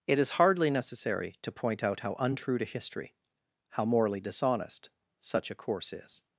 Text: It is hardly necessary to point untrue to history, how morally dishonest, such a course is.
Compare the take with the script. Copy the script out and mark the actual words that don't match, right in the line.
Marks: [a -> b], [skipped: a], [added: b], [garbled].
It is hardly necessary to point [added: out how] untrue to history, how morally dishonest, such a course is.